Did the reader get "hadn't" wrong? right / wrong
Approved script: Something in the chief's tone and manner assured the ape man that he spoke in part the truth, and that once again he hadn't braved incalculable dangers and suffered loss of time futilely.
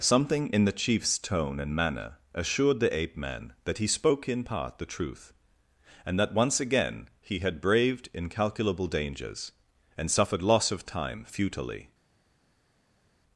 wrong